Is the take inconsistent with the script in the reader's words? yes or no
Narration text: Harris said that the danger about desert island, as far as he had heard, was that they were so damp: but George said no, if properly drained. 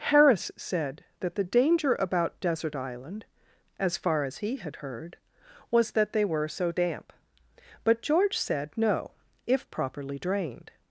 no